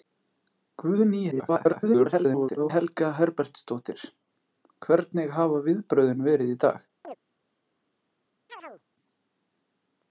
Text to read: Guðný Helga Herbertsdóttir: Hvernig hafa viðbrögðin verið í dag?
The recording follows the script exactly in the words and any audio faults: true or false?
false